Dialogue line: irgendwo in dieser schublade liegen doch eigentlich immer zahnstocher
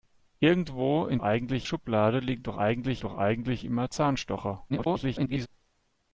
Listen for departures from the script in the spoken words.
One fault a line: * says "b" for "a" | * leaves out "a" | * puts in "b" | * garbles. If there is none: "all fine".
* says "eigentlich" for "dieser"
* puts in "doch eigentlich"
* garbles